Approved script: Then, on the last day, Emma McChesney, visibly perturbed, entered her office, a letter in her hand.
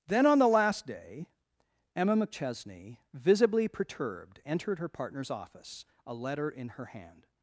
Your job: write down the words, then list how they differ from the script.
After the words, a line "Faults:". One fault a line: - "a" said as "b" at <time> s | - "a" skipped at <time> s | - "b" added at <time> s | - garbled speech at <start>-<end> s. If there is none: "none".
Then, on the last day, Emma McChesney, visibly perturbed, entered her partner's office, a letter in her hand.
Faults:
- "partner's" added at 4.9 s